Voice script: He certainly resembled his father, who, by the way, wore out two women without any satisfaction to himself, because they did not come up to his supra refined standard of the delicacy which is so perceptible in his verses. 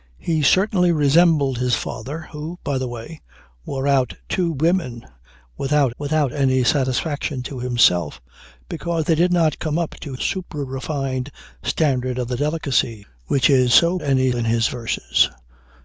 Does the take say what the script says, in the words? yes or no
no